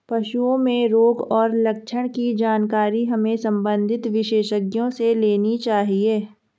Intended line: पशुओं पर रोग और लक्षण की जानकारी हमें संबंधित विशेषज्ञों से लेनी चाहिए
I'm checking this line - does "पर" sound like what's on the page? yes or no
no